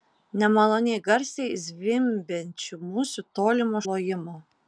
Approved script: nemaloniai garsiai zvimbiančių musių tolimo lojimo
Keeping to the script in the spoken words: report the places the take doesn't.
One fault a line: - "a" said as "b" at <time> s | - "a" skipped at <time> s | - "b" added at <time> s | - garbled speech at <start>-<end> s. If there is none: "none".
none